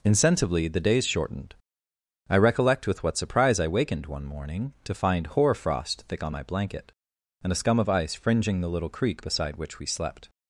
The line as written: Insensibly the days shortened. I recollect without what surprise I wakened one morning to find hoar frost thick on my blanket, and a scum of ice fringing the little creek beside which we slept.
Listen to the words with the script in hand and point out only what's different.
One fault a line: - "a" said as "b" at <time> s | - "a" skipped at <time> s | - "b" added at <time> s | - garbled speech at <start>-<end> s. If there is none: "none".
- "without" said as "with" at 2.9 s